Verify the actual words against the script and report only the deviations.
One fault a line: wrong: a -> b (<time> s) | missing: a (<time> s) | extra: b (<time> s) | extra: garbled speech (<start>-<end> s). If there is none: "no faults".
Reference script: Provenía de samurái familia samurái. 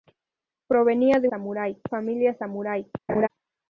no faults